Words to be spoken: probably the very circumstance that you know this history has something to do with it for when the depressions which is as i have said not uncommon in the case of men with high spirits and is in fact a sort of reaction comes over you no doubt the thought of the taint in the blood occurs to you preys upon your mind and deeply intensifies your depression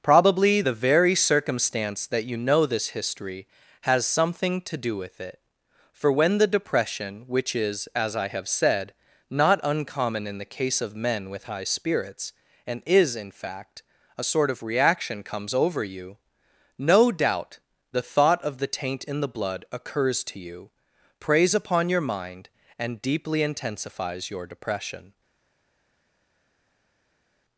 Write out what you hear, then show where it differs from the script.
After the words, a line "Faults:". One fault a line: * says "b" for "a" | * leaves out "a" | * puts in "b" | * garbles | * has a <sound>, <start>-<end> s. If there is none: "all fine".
probably the very circumstance that you know this history has something to do with it for when the depression which is as i have said not uncommon in the case of men with high spirits and is in fact a sort of reaction comes over you no doubt the thought of the taint in the blood occurs to you preys upon your mind and deeply intensifies your depression
Faults:
* says "depression" for "depressions"